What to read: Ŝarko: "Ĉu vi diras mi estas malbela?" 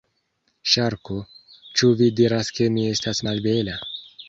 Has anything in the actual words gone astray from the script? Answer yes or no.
yes